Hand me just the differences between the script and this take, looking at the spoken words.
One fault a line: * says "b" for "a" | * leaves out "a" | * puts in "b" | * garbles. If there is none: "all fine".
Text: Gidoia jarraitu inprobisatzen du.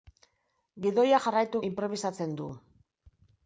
all fine